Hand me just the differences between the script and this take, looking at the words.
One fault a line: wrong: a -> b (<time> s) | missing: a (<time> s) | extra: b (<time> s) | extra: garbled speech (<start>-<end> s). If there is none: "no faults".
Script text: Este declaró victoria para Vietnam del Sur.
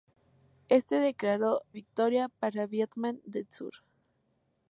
no faults